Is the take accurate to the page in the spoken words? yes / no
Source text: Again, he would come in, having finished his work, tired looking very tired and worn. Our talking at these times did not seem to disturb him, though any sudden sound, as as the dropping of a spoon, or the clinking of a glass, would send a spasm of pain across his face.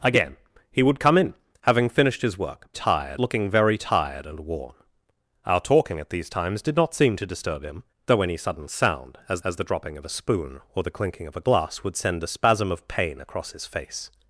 yes